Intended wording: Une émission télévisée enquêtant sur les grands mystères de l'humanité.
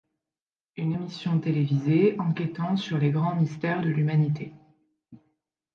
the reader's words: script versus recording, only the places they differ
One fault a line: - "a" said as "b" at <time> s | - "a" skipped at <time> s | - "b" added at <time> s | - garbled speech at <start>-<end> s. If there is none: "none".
none